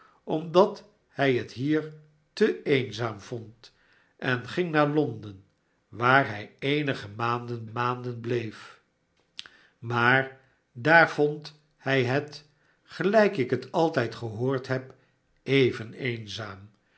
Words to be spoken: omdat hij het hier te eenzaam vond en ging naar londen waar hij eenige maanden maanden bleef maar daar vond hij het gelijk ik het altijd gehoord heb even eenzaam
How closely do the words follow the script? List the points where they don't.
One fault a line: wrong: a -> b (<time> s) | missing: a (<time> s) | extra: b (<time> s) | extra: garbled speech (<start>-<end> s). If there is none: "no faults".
no faults